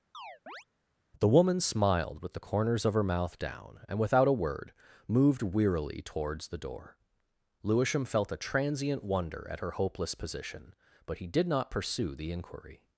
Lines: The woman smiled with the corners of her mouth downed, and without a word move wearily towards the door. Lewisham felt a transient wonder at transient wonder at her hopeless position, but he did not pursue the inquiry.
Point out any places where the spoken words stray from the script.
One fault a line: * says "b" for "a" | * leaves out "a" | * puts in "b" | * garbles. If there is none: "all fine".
* says "down" for "downed"
* says "moved" for "move"
* leaves out "transient wonder at"